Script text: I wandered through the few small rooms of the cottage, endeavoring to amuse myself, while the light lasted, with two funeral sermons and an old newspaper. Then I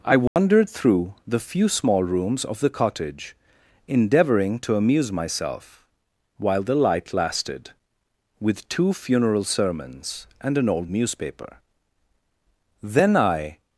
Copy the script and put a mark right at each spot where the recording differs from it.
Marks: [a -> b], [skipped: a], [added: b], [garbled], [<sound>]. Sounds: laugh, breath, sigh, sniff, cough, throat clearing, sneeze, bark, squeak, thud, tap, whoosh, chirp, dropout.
I wandered [dropout] through the few small rooms of the cottage, endeavoring to amuse myself, while the light lasted, with two funeral sermons and an old newspaper. Then I